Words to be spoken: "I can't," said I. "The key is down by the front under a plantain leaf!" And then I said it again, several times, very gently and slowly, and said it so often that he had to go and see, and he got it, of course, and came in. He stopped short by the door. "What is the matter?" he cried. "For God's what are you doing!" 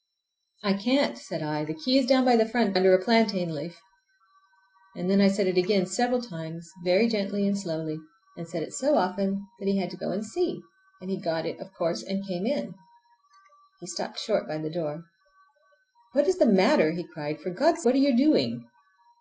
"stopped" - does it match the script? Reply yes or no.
yes